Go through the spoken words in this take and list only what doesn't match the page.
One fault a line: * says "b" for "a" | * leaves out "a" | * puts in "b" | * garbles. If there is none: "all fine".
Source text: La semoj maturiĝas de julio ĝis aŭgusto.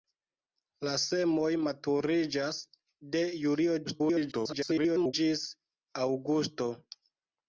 * garbles